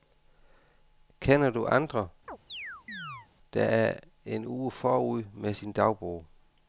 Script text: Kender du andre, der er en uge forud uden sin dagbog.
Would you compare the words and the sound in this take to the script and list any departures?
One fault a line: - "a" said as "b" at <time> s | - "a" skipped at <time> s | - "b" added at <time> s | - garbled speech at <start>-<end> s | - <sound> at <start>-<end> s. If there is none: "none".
- chirp at 2.3-3.3 s
- "uden" said as "med" at 5.3 s